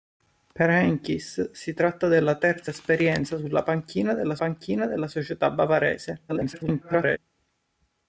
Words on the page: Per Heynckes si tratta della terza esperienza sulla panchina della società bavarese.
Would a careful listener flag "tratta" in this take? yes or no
no